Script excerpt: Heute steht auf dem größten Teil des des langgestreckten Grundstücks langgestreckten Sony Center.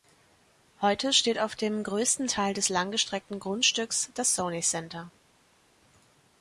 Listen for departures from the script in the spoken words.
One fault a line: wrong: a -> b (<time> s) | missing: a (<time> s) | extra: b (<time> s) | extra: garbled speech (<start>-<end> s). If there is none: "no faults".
missing: des (2.7 s)
wrong: langgestreckten -> das (4.2 s)